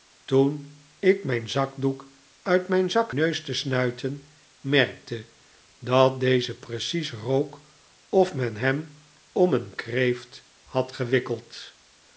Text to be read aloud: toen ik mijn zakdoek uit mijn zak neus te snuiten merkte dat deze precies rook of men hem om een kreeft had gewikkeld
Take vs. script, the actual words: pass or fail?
pass